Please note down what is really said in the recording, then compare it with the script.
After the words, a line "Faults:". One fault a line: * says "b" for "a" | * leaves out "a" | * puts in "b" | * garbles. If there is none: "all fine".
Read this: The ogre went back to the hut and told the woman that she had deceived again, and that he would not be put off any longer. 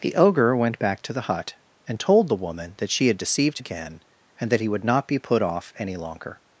The ogre went back to the hut and told the woman that she had deceived again, and that he would not be put off any longer.
Faults:
all fine